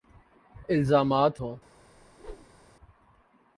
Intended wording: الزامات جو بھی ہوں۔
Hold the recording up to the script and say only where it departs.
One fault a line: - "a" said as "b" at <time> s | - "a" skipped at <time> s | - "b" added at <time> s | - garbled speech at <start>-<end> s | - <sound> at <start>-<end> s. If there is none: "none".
- "جو بھی" skipped at 1.3 s
- whoosh at 1.9-2.6 s